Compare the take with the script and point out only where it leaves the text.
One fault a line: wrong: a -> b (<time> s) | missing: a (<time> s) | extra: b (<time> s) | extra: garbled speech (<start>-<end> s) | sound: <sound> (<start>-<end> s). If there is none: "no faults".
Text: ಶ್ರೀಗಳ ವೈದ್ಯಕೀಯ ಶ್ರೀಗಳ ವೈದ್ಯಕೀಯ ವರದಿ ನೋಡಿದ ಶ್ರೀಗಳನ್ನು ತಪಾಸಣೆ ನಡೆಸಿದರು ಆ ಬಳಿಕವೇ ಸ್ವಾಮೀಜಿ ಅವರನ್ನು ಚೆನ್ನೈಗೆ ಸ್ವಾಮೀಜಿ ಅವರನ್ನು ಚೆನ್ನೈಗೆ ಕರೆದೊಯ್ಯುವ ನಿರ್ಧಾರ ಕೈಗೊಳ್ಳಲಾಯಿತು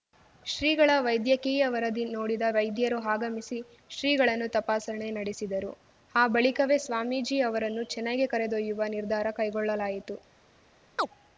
wrong: ಶ್ರೀಗಳ ವೈದ್ಯಕೀಯ ವರದಿ ನೋಡಿದ -> ವರದಿ ನೋಡಿದ ವೈದ್ಯರು ಆಗಮಿಸಿ (1.7 s)
missing: ಸ್ವಾಮೀಜಿ ಅವರನ್ನು ಚೆನ್ನೈಗೆ (8.3 s)
sound: chirp (11.0-11.1 s)